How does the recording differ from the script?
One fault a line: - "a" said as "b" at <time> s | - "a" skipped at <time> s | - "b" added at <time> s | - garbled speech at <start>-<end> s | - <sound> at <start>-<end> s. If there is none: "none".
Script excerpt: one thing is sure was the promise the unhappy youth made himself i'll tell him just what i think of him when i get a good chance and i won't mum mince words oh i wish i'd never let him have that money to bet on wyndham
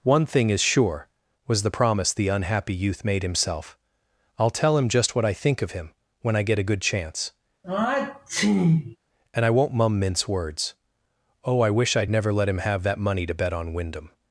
- sneeze at 7.6-9.0 s